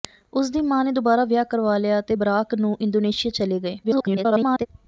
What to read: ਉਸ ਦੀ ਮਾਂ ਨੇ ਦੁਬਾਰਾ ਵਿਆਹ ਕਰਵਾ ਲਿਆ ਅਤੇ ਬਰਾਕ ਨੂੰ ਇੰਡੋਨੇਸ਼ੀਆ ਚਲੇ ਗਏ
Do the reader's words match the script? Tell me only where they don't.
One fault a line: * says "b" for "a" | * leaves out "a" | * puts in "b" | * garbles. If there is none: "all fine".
* garbles